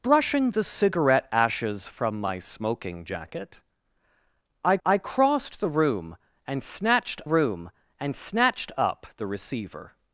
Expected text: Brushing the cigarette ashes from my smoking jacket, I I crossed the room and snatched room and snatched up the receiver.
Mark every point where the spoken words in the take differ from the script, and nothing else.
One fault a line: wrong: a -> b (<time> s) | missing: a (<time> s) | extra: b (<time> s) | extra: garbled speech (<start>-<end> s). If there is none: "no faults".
no faults